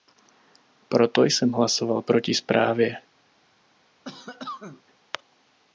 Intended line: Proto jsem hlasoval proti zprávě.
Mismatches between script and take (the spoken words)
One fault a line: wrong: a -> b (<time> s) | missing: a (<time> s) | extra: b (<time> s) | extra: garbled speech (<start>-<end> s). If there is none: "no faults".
no faults